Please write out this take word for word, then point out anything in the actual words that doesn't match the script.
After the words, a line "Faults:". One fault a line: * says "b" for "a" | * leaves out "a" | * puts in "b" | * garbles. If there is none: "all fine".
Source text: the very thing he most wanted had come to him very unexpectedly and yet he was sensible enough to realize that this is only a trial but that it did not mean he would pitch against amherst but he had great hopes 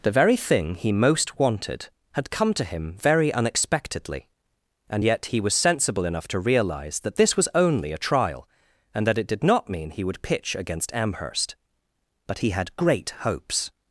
the very thing he most wanted had come to him very unexpectedly and yet he was sensible enough to realize that this was only a trial and that it did not mean he would pitch against amherst but he had great hopes
Faults:
* says "was" for "is"
* says "and" for "but"